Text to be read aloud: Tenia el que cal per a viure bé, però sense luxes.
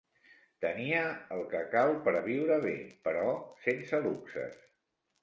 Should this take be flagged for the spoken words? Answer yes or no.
no